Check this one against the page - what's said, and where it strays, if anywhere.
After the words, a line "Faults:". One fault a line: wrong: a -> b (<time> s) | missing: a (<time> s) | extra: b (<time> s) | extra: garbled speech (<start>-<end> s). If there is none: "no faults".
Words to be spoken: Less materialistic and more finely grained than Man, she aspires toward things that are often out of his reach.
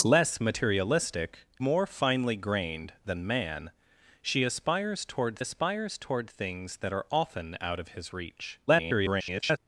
Less materialistic more finely grained than Man, she aspires toward aspires toward things that are often out of his reach. [garbled]
Faults:
missing: and (1.4 s)
extra: aspires toward (5.4 s)
extra: garbled speech (8.7-9.6 s)